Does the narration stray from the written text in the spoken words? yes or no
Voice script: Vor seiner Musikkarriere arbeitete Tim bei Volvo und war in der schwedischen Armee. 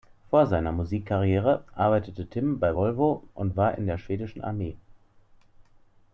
no